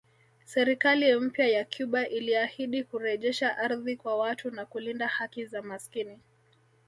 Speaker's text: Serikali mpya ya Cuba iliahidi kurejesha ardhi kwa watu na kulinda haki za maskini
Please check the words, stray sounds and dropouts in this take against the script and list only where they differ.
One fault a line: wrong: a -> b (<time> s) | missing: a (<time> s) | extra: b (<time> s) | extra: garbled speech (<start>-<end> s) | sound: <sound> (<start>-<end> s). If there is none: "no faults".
no faults